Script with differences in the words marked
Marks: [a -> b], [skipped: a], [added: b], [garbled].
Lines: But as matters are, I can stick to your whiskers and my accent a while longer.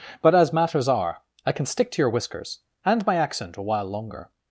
But as matters are, I can stick to your whiskers and my accent a while longer.